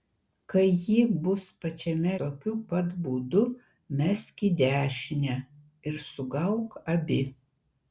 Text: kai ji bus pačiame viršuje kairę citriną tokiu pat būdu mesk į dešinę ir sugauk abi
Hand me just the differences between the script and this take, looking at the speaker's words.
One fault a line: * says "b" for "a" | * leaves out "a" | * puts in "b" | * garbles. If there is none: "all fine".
* leaves out "viršuje kairę citriną"